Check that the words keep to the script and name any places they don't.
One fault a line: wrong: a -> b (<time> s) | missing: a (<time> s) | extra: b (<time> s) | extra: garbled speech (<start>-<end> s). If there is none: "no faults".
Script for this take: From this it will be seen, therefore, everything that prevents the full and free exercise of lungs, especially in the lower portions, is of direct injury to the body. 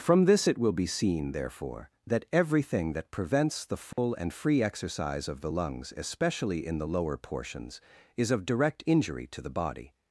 extra: that (2.1 s)
extra: the (5.4 s)